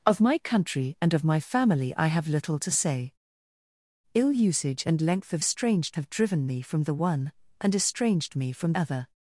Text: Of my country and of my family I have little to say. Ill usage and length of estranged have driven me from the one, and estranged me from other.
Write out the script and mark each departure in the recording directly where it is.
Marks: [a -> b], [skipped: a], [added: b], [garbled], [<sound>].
Of my country and of my family I have little to say. Ill usage and length of estranged have driven me from the one, and estranged me from other.